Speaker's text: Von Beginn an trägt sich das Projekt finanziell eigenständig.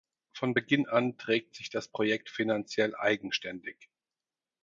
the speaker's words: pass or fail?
pass